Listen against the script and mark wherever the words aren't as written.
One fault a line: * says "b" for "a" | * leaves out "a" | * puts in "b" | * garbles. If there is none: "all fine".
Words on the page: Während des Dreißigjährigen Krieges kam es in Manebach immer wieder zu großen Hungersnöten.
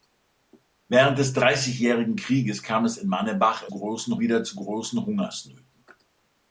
* says "großen" for "immer"